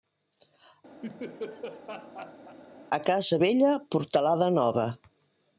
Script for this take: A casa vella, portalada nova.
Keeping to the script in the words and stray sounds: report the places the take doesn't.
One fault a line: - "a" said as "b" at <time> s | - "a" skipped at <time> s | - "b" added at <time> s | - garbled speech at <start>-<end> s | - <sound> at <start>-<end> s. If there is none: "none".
- laugh at 1.0-2.6 s